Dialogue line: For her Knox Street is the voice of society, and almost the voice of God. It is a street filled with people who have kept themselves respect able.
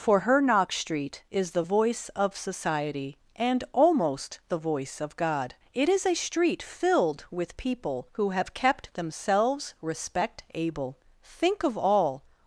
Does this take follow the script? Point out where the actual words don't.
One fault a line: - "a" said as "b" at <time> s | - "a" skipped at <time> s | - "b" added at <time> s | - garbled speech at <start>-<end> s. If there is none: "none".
- "Think of all" added at 11.2 s